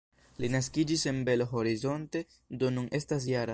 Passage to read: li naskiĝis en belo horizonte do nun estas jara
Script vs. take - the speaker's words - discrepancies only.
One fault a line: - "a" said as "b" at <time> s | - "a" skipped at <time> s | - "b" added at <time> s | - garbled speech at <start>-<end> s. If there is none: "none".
none